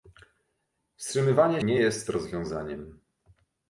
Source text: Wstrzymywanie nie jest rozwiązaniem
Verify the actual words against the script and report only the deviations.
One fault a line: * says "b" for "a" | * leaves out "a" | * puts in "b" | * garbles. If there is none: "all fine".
all fine